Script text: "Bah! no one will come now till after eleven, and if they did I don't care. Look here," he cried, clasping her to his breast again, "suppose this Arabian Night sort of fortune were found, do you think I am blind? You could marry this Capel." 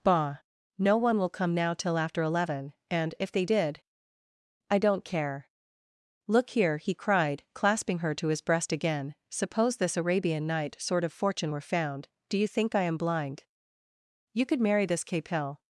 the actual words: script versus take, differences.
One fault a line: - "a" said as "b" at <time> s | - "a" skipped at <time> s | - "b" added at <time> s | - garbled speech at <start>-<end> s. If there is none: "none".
none